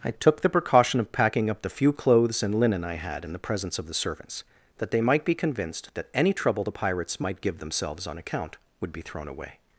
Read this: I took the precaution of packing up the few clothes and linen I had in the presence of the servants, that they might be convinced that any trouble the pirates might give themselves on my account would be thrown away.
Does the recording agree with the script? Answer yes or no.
no